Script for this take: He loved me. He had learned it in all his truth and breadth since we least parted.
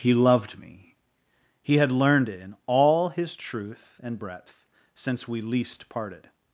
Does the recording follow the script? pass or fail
pass